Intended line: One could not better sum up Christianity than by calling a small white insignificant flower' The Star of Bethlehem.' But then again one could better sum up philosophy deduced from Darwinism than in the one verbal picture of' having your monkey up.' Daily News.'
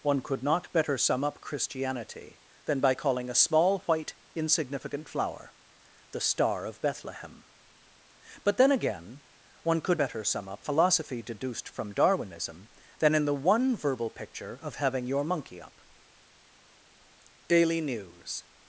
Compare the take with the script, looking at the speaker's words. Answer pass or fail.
pass